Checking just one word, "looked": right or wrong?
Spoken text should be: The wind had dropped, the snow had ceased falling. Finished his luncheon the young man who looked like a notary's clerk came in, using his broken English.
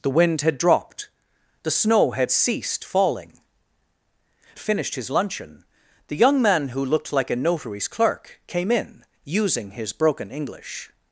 right